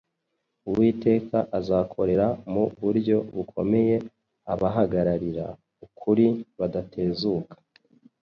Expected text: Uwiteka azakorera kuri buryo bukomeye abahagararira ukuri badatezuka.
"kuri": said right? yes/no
no